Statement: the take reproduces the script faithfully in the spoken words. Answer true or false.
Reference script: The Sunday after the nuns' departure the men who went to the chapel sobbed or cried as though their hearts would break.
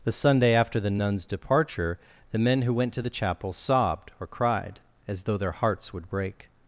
true